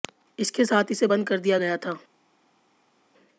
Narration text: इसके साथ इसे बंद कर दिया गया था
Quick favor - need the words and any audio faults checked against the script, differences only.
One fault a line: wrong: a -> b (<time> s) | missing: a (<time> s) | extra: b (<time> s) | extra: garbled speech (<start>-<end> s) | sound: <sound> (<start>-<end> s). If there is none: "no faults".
no faults